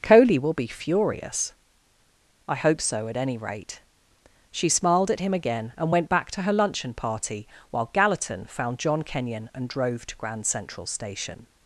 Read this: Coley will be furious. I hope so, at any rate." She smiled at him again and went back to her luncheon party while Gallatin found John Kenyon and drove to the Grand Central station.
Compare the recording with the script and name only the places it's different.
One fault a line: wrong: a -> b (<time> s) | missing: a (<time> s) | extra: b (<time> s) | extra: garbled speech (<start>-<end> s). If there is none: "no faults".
missing: the (10.1 s)